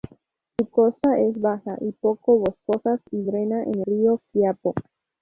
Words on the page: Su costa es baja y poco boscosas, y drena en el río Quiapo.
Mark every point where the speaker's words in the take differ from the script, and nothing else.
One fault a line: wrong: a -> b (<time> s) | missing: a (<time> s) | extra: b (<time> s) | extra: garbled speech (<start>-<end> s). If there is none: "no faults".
missing: el (3.8 s)